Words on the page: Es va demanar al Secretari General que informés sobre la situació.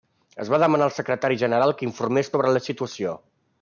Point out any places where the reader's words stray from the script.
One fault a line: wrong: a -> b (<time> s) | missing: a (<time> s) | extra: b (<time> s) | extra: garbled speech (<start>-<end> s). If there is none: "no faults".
no faults